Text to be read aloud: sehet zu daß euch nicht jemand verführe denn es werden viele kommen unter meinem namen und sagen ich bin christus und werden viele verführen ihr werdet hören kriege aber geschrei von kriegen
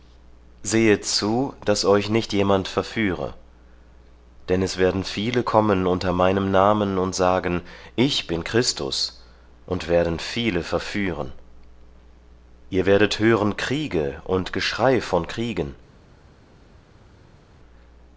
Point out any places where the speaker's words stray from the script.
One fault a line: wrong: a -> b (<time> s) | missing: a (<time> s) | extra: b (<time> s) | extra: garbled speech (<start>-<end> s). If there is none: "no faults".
wrong: aber -> und (14.2 s)